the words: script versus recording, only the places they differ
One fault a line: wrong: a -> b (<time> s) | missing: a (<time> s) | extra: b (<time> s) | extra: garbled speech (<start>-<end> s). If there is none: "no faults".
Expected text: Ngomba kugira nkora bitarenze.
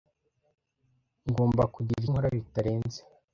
no faults